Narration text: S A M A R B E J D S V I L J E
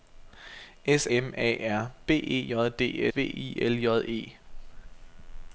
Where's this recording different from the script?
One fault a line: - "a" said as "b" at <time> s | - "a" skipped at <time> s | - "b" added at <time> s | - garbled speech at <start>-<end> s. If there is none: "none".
- "A" skipped at 1.1 s
- "S" skipped at 3.1 s